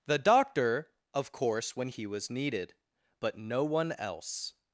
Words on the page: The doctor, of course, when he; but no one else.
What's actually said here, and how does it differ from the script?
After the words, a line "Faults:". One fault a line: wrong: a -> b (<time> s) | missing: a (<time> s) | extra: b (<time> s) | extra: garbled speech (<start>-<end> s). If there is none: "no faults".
The doctor, of course, when he was needed; but no one else.
Faults:
extra: was needed (2.1 s)